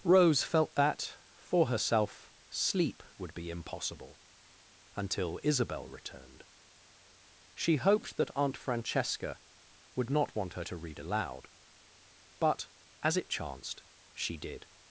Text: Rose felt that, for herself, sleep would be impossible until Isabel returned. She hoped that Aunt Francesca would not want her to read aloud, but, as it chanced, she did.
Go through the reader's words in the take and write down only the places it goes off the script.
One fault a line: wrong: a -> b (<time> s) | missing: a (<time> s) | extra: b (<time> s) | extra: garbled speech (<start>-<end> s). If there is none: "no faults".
no faults